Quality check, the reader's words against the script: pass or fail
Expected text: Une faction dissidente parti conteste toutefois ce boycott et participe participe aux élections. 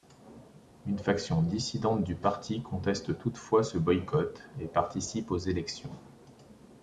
fail